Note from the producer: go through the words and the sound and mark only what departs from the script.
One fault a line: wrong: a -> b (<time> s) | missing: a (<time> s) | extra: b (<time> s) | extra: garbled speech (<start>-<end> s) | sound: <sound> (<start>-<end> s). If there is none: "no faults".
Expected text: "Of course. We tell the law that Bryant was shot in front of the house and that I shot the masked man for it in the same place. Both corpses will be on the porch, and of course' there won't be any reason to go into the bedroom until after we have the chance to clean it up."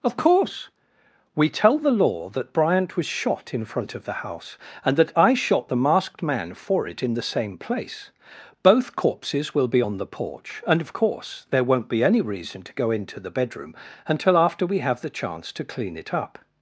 no faults